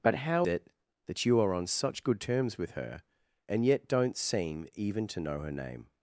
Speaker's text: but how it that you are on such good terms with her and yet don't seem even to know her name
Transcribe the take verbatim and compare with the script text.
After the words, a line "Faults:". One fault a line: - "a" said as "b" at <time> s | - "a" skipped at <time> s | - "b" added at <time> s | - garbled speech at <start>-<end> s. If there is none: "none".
but how it that you are on such good terms with her and yet don't seem even to know her name
Faults:
none